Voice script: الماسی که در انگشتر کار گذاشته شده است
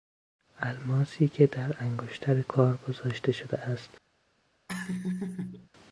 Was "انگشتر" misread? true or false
false